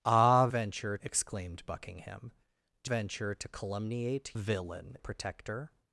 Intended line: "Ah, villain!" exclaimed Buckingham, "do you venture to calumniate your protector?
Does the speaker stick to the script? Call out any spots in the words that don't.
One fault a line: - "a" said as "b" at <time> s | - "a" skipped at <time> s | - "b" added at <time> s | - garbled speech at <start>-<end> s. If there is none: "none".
- "villain" said as "venture" at 0.5 s
- "you" skipped at 2.9 s
- "your" said as "villain" at 4.3 s